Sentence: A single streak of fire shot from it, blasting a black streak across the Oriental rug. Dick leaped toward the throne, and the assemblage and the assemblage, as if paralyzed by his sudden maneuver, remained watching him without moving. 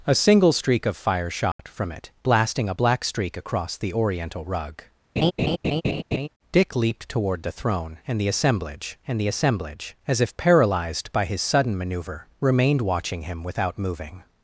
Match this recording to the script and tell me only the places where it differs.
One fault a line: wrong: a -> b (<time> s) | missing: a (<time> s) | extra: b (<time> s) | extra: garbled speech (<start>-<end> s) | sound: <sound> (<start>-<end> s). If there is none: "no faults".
sound: dropout (1.5-1.6 s)
sound: laugh (5.2-6.3 s)